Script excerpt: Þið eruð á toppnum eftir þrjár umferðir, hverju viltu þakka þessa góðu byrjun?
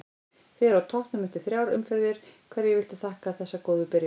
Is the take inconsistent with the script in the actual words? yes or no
no